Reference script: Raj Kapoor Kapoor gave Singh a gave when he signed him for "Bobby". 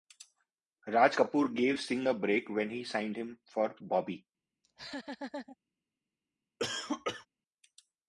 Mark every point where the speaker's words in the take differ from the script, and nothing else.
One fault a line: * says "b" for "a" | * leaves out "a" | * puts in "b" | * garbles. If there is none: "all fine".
* leaves out "Kapoor"
* says "break" for "gave"